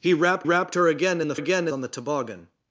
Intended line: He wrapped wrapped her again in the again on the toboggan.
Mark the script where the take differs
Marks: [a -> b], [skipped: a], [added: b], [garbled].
He wrapped wrapped her again in the again on the toboggan.